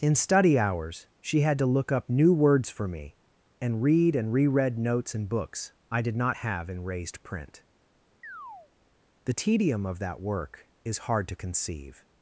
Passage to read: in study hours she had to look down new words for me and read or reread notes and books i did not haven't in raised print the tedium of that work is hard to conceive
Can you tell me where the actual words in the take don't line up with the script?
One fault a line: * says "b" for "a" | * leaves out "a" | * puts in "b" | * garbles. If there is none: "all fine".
* says "up" for "down"
* says "and" for "or"
* says "have" for "haven't"